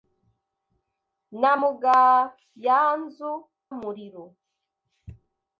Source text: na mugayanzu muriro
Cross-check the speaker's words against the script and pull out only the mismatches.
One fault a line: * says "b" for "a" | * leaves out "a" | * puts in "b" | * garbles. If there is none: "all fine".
all fine